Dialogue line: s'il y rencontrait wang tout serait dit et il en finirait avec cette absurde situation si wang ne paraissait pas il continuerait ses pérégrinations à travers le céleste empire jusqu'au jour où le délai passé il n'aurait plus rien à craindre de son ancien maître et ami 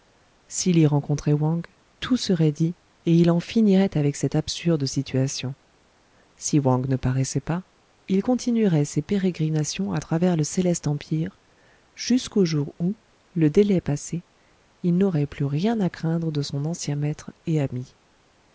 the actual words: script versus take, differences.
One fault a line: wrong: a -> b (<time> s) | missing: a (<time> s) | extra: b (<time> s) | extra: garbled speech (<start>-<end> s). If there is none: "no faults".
no faults